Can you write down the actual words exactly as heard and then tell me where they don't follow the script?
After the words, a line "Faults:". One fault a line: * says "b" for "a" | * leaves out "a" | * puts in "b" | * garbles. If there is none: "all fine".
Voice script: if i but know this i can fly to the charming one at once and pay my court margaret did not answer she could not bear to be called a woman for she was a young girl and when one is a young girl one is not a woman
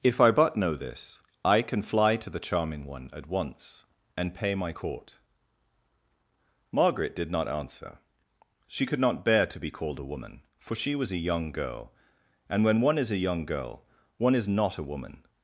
if i but know this i can fly to the charming one at once and pay my court margaret did not answer she could not bear to be called a woman for she was a young girl and when one is a young girl one is not a woman
Faults:
all fine